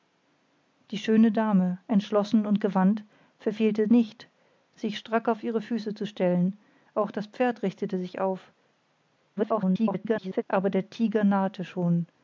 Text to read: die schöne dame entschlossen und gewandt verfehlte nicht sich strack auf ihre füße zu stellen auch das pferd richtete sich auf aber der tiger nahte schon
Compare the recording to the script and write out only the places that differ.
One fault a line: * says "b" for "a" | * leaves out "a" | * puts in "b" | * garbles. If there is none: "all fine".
* garbles